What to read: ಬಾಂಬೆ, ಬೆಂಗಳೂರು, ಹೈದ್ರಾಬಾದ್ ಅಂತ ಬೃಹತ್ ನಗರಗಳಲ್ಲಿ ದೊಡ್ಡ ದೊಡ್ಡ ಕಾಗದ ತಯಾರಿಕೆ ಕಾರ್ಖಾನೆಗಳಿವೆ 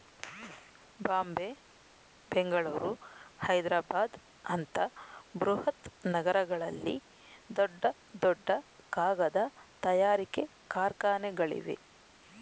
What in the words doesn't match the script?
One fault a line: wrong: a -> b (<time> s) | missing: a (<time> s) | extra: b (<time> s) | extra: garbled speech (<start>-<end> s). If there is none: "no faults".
no faults